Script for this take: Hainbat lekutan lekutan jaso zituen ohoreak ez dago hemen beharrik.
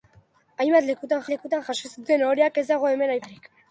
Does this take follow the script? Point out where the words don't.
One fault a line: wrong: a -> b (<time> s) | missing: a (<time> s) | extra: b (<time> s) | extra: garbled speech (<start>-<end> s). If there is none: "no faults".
no faults